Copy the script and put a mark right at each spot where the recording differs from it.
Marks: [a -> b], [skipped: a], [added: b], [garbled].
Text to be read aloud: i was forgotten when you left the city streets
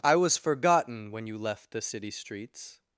i was forgotten when you left the city streets